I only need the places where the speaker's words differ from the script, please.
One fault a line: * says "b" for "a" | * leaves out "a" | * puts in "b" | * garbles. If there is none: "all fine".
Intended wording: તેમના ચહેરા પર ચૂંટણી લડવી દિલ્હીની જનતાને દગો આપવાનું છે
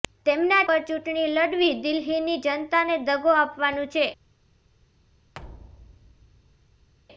* leaves out "ચહેરા"